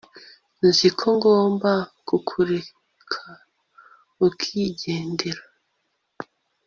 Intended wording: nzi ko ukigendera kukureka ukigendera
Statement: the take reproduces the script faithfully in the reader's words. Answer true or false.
false